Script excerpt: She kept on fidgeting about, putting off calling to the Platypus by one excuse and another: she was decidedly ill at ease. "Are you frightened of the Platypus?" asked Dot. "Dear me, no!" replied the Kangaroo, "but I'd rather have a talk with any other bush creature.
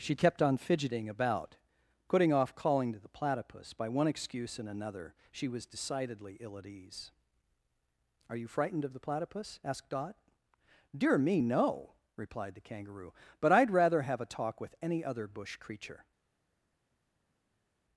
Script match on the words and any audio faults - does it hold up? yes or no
yes